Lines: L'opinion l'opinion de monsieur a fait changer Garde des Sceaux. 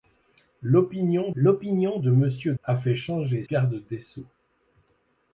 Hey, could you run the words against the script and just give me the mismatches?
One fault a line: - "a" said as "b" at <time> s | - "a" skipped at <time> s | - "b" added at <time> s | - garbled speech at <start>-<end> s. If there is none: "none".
none